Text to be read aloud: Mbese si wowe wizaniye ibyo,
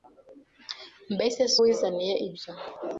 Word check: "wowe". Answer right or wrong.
wrong